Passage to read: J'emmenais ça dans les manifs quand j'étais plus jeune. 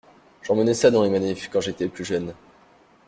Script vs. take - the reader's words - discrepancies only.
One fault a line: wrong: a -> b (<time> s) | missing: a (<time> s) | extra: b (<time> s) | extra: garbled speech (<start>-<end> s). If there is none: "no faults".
no faults